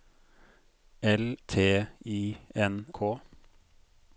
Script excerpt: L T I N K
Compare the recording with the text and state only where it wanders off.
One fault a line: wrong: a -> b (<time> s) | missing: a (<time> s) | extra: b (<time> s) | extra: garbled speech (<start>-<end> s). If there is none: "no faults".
no faults